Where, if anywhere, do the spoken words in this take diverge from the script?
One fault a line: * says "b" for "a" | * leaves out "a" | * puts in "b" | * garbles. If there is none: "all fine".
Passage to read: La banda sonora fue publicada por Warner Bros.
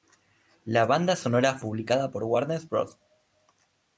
* leaves out "fue"